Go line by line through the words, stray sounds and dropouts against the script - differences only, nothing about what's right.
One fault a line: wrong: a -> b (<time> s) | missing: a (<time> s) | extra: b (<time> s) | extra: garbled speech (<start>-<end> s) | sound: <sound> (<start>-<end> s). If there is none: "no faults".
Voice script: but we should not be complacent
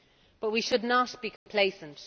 sound: dropout (1.4-1.5 s)